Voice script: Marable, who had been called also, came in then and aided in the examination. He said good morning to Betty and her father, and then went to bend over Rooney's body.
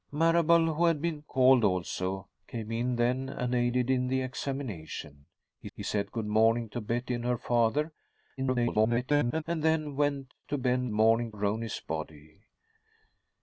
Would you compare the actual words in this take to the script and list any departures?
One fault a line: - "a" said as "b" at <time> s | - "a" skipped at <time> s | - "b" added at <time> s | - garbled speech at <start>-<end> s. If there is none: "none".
- "he" added at 5.7 s
- garbled speech at 8.4-9.4 s
- "over" said as "morning" at 10.9 s